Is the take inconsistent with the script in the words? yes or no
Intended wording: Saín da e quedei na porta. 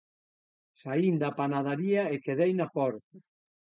yes